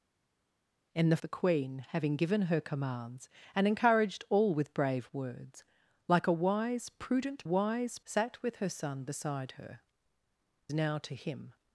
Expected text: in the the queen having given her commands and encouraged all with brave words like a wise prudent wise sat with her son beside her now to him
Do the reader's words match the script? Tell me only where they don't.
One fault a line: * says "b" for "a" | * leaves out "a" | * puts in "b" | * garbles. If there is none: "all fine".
all fine